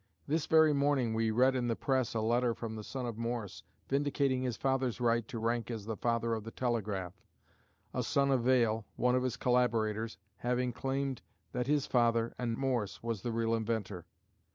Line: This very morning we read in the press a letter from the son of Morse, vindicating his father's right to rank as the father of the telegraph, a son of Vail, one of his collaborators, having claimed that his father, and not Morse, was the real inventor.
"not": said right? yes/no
no